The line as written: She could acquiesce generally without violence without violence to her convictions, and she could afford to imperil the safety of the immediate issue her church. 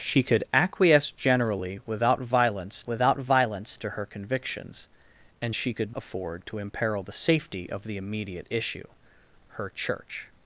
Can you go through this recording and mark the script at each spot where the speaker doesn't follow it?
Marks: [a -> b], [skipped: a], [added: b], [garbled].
She could acquiesce generally without violence without violence to her convictions, and she could afford to imperil the safety of the immediate issue her church.